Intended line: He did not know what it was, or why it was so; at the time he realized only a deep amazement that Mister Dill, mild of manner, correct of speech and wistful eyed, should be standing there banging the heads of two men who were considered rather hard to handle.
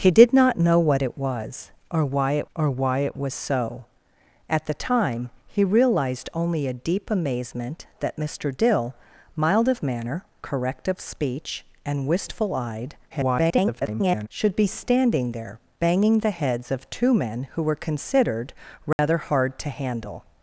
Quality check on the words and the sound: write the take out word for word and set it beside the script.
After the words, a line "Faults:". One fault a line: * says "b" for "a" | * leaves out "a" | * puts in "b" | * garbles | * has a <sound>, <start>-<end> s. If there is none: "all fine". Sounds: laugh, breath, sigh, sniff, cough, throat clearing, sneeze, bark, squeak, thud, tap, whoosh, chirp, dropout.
He did not know what it was, or why it or why it was so; at the time he realized only a deep amazement that Mister Dill, mild of manner, correct of speech and wistful eyed, [garbled] should be standing there banging the heads of two men who were considered rather hard to handle.
Faults:
* puts in "or why it"
* garbles
* has a dropout, 18.9-19.0 s